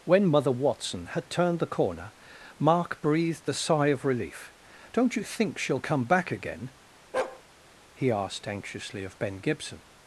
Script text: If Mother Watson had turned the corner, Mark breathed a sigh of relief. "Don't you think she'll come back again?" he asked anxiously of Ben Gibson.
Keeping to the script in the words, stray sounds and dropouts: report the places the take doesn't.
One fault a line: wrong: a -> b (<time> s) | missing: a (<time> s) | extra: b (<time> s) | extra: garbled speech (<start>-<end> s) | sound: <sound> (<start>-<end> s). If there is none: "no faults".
wrong: If -> When (0.0 s)
sound: bark (7.1-7.4 s)